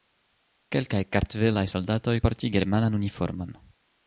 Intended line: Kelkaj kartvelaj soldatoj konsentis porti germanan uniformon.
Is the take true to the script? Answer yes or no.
no